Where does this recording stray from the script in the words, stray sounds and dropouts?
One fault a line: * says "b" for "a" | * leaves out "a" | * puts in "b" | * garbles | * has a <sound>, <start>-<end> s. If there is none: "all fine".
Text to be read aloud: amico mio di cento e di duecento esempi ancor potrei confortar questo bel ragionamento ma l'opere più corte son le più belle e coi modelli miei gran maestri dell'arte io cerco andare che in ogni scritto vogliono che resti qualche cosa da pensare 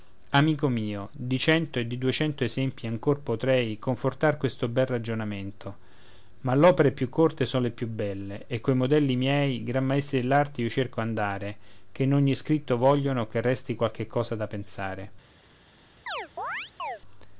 * has a chirp, 16.1-17.0 s